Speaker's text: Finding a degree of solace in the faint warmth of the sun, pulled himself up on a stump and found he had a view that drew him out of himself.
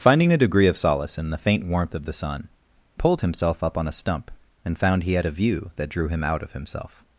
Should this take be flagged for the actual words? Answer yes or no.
no